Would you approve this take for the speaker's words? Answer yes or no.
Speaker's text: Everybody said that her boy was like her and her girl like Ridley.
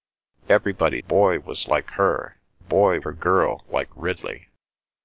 no